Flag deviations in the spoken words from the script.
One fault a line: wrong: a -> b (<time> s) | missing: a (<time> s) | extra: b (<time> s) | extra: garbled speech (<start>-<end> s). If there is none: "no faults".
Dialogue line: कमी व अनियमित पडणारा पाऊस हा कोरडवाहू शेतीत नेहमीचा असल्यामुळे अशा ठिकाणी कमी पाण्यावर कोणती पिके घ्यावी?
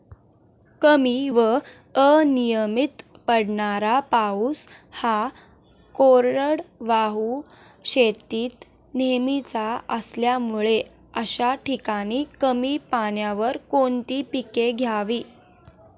no faults